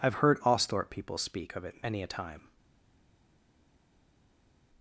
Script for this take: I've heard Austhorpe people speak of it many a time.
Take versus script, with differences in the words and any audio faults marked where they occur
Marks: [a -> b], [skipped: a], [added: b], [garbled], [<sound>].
I've heard Austhorpe people speak of it many a time.